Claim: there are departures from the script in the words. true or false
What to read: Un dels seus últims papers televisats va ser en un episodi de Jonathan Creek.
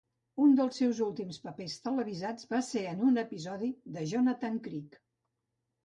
false